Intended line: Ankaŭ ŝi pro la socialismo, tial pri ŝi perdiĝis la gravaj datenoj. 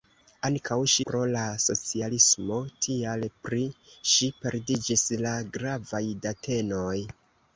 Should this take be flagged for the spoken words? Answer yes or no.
no